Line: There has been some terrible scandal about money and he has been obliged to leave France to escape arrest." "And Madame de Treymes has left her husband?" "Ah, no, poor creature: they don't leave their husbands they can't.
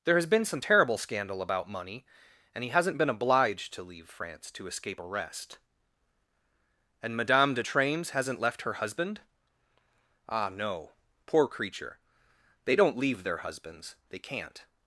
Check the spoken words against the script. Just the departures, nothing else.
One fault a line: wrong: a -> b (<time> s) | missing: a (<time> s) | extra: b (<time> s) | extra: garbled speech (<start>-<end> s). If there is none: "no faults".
wrong: has -> hasn't (2.7 s)
wrong: has -> hasn't (8.1 s)